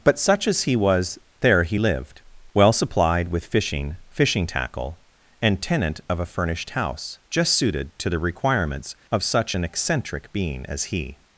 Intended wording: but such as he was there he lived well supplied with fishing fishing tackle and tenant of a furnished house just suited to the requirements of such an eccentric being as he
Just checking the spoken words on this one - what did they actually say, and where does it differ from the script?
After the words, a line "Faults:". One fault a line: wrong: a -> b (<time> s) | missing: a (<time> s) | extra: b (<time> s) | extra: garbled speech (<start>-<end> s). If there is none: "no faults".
but such as he was there he lived well supplied with fishing fishing tackle and tenant of a furnished house just suited to the requirements of such an eccentric being as he
Faults:
no faults